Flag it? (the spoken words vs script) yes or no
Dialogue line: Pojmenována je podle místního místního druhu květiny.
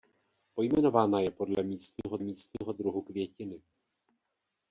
no